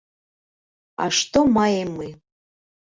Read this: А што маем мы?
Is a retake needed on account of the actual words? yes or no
no